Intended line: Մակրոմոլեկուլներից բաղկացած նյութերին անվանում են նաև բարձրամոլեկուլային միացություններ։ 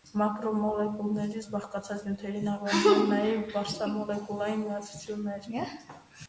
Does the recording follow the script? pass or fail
pass